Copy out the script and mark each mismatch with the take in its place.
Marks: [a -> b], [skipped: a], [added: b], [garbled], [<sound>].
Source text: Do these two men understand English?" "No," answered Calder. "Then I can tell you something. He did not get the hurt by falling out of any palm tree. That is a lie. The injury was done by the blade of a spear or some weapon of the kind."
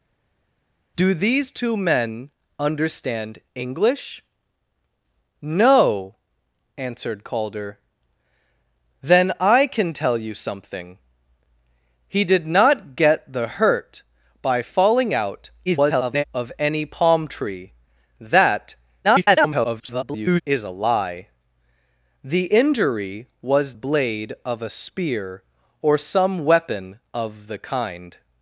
Do these two men understand English?" "No," answered Calder. "Then I can tell you something. He did not get the hurt by falling out [garbled] of any palm tree. That [garbled] is a lie. The injury was [skipped: done by the] blade of a spear or some weapon of the kind."